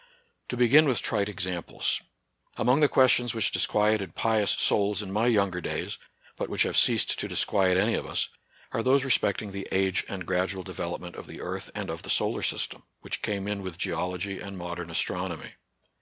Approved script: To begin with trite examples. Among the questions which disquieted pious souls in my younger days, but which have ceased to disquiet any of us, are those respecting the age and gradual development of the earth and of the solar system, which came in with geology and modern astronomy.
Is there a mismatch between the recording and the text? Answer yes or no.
no